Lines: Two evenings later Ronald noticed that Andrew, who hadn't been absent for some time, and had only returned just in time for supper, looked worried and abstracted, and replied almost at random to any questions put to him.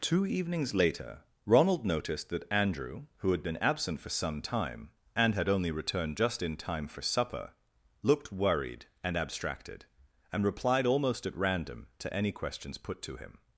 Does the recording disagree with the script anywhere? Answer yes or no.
yes